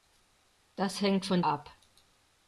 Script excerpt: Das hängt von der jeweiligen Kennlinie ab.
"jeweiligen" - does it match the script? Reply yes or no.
no